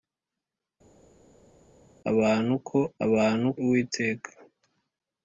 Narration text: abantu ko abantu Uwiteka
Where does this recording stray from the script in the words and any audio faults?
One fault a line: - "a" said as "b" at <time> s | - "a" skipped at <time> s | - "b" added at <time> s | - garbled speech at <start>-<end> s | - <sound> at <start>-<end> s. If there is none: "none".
none